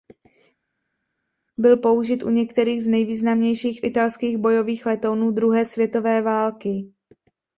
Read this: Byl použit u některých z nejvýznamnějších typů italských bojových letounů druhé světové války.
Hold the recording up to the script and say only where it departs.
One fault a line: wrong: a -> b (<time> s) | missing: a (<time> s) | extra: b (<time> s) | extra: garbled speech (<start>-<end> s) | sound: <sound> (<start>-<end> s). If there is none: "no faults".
missing: typů (3.8 s)